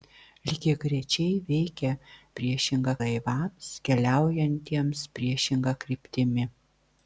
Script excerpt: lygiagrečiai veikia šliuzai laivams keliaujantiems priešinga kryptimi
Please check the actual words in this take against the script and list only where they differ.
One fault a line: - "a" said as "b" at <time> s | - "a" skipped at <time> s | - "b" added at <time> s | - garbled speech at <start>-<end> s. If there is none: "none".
- "šliuzai" said as "priešinga" at 2.4 s